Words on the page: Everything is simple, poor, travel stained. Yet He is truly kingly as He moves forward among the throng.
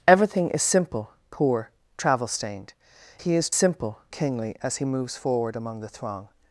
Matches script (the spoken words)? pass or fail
fail